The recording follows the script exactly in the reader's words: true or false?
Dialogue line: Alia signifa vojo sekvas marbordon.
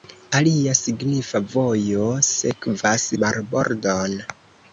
true